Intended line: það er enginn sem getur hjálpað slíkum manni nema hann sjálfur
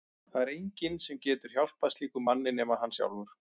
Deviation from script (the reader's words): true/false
false